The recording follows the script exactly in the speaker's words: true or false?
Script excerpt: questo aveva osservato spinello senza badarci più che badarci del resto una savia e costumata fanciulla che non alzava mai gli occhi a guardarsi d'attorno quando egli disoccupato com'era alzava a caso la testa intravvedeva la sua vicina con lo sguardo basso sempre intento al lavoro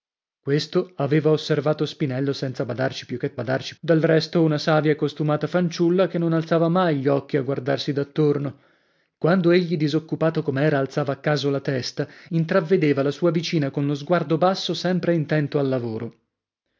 true